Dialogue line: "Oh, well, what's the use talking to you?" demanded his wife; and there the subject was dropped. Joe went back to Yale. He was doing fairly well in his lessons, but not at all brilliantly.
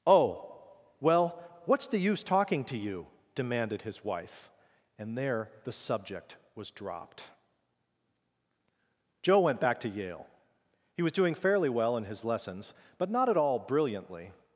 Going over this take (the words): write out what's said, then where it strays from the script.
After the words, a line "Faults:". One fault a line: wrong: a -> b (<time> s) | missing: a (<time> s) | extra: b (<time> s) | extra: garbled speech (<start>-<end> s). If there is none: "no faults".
"Oh, well, what's the use talking to you?" demanded his wife; and there the subject was dropped. Joe went back to Yale. He was doing fairly well in his lessons, but not at all brilliantly.
Faults:
no faults